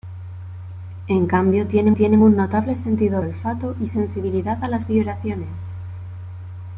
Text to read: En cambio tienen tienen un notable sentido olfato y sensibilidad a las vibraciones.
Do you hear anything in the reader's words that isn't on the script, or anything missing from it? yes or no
no